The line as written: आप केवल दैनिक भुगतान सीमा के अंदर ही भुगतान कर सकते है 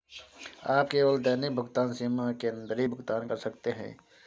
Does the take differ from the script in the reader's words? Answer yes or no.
no